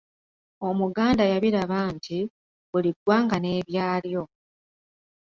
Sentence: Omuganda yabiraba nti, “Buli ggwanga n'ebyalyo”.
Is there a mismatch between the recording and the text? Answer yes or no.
no